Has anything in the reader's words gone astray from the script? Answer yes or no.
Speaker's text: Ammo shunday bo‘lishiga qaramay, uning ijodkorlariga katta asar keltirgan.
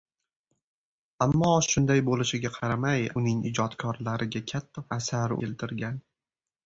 no